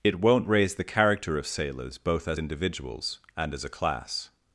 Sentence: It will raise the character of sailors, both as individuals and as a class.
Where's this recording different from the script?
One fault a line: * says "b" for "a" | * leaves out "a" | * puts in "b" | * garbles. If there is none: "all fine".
* says "won't" for "will"